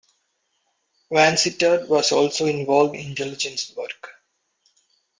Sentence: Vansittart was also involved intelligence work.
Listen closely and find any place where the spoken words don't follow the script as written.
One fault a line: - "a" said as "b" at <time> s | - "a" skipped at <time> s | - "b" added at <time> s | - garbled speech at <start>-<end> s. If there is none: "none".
none